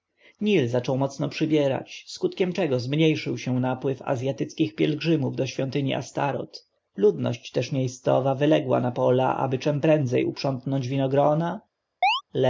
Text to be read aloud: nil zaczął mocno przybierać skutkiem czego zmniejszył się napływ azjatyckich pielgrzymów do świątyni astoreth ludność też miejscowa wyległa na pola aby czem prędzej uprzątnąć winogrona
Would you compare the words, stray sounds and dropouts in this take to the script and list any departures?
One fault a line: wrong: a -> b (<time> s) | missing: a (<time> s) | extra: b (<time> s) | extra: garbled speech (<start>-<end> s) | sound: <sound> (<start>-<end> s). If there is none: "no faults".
sound: chirp (12.0-12.2 s)